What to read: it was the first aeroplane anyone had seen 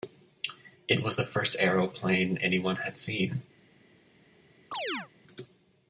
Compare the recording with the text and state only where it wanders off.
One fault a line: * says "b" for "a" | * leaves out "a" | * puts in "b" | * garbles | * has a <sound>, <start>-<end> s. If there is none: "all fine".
* has a chirp, 4.7-5.1 s